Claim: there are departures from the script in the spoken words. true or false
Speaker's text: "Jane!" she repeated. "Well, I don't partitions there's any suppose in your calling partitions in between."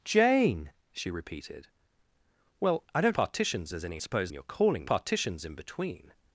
false